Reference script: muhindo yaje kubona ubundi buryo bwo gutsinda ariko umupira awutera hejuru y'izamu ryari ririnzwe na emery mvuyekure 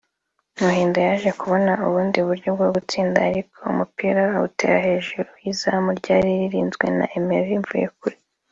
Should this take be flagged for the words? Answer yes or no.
no